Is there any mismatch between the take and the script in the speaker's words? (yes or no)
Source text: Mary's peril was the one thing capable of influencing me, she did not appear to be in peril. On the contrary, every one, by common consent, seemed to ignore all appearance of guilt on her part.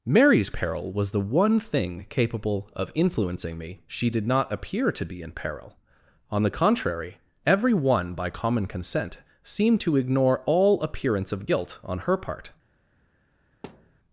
no